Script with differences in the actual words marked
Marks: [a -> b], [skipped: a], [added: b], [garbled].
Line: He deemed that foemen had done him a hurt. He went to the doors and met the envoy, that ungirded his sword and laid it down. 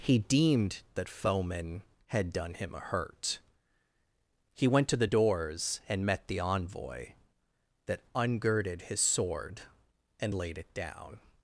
He deemed that foemen had done him a hurt. He went to the doors and met the envoy, that ungirded his sword and laid it down.